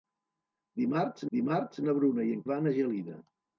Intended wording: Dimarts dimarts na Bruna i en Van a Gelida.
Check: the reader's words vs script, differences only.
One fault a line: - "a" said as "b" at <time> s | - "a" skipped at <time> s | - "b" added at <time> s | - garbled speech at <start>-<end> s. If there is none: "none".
none